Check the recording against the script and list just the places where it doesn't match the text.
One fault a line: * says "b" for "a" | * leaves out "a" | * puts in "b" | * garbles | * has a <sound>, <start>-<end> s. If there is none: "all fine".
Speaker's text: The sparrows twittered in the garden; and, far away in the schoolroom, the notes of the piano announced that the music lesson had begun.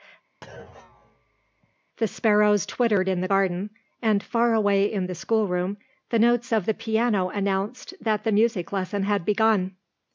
* has a thud, 0.4-1.8 s